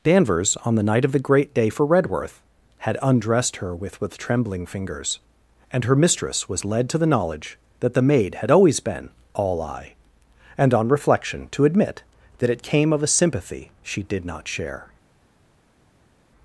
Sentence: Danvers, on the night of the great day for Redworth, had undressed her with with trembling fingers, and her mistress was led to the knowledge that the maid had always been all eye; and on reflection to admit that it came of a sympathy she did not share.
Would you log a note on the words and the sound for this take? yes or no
no